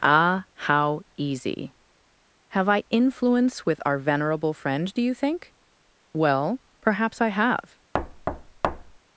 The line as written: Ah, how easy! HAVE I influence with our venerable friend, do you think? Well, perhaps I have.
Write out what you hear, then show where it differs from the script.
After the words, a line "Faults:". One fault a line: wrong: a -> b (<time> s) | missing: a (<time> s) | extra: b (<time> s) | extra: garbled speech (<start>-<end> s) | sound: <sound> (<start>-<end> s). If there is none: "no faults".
Ah, how easy! HAVE I influence with our venerable friend, do you think? Well, perhaps I have.
Faults:
sound: thud (7.9-9.0 s)